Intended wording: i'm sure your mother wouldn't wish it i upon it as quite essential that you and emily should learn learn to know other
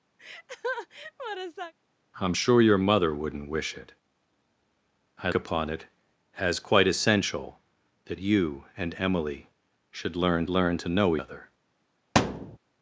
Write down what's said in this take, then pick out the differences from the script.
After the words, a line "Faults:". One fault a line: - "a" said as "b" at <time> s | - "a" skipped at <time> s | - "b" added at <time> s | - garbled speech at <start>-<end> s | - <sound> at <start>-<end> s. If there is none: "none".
i'm sure your mother wouldn't wish it i upon it as quite essential that you and emily should learn learn to know other
Faults:
- laugh at 0.2-1.7 s
- thud at 12.1-12.6 s